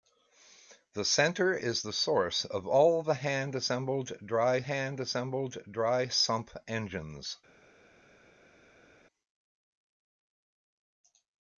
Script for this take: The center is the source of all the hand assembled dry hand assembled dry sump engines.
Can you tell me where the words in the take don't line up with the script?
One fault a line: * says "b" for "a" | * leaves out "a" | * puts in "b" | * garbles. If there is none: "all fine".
all fine